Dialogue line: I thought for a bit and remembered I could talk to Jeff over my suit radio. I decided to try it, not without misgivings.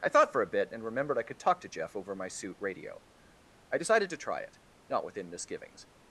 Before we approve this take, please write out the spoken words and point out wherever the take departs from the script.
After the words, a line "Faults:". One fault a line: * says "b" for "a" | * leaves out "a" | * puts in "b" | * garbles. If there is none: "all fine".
I thought for a bit and remembered I could talk to Jeff over my suit radio. I decided to try it, not within misgivings.
Faults:
* says "within" for "without"